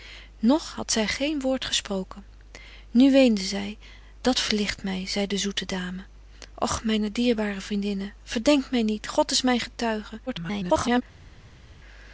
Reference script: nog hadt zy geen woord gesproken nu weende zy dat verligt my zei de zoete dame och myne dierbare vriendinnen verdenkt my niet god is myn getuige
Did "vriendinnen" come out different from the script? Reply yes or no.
no